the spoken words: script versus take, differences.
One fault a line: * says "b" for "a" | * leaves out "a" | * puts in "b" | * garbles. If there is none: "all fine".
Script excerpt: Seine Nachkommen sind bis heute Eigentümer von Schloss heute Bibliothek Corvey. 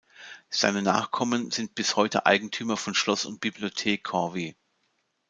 * says "und" for "heute"